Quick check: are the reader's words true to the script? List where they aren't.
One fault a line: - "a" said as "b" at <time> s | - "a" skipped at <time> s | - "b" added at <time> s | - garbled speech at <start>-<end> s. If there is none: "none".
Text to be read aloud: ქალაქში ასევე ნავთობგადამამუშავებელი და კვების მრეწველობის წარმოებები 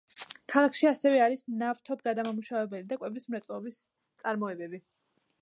- "არის" added at 1.2 s